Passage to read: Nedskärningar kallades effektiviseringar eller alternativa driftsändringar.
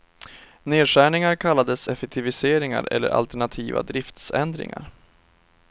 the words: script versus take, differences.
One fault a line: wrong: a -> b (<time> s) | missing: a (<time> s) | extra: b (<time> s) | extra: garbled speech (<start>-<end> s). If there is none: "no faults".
no faults